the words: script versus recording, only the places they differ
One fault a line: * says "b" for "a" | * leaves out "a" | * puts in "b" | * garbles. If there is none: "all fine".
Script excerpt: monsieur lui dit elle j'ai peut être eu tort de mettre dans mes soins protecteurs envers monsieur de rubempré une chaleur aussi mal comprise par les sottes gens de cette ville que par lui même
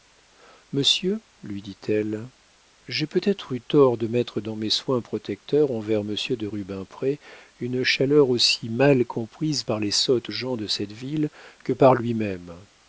all fine